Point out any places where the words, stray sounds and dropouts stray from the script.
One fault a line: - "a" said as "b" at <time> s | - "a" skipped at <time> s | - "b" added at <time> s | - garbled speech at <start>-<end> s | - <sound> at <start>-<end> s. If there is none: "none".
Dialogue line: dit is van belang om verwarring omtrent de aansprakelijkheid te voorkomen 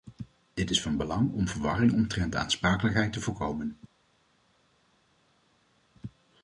none